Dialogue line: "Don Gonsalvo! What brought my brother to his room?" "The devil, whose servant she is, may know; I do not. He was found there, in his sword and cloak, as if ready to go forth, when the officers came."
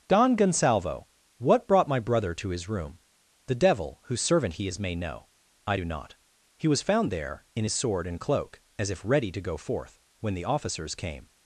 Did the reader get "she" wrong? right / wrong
wrong